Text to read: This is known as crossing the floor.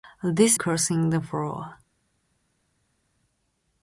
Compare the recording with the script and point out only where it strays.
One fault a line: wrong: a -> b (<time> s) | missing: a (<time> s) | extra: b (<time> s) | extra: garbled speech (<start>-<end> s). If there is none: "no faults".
missing: is known as (0.6 s)